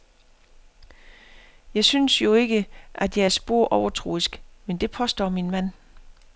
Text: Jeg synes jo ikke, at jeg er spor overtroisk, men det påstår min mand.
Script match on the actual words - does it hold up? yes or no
yes